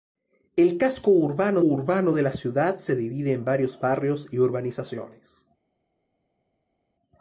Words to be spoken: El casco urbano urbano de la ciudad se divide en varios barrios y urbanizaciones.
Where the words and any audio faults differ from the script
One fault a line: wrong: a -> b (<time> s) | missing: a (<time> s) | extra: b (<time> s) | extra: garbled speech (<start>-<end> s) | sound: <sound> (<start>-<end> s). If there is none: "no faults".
no faults